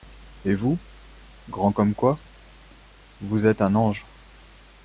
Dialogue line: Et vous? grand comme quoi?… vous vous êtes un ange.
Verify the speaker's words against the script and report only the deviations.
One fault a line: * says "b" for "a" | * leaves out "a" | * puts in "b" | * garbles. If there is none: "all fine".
* leaves out "vous"